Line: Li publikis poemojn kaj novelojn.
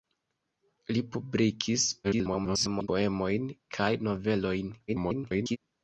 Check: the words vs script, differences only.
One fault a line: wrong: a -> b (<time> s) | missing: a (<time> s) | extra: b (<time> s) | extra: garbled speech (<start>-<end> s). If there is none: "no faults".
extra: garbled speech (2.0-2.9 s)
extra: garbled speech (4.9-5.6 s)